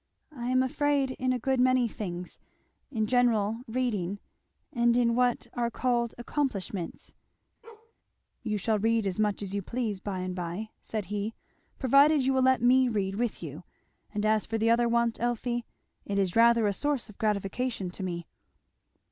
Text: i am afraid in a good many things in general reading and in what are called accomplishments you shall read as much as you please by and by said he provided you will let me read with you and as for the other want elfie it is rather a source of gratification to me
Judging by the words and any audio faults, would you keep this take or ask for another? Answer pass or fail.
fail